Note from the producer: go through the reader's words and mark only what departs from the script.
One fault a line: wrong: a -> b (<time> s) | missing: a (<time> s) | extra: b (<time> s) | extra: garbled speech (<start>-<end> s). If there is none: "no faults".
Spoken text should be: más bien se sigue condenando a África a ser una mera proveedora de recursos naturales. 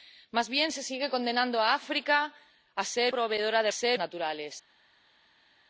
missing: una mera (3.1 s)
wrong: recursos -> ser (3.7 s)